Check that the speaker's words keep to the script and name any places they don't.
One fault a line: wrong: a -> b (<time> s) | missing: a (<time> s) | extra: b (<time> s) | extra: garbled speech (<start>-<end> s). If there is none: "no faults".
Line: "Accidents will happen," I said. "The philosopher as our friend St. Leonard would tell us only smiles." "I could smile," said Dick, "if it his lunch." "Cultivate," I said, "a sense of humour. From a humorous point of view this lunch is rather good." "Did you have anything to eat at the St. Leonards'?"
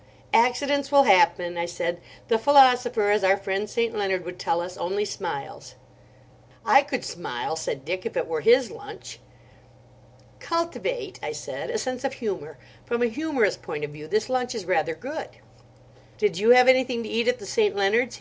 extra: were (8.3 s)